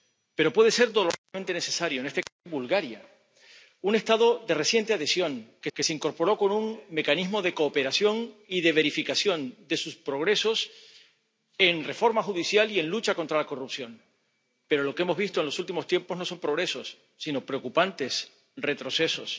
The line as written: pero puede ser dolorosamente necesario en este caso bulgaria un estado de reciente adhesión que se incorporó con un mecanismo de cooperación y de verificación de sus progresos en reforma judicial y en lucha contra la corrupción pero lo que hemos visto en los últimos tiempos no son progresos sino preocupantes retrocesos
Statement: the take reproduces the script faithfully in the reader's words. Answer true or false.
false